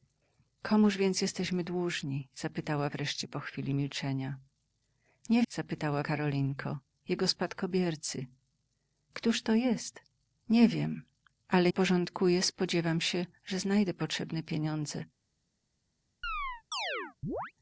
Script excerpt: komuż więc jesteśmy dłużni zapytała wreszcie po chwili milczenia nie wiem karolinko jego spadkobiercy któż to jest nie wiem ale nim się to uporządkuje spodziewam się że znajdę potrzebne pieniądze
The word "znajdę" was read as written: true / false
true